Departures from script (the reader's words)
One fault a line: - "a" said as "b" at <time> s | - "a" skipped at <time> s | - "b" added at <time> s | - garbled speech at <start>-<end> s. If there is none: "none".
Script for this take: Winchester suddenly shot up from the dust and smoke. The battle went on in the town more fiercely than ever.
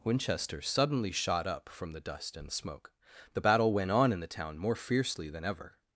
none